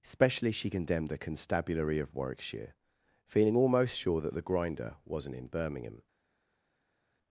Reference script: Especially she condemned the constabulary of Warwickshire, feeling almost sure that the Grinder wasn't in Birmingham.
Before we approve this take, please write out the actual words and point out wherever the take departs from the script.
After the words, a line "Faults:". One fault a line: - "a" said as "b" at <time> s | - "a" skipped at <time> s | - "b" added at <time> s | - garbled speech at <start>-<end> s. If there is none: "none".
Especially she condemned the constabulary of Warwickshire, feeling almost sure that the Grinder wasn't in Birmingham.
Faults:
none